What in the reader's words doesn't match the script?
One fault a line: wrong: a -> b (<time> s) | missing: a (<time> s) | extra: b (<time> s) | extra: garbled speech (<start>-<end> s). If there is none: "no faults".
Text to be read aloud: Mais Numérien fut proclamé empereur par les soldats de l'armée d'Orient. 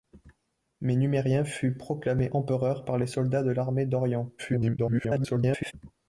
extra: garbled speech (4.4-5.7 s)